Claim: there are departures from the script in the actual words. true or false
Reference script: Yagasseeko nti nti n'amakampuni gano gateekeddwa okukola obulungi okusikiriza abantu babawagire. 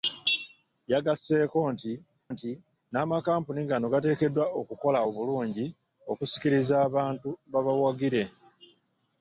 false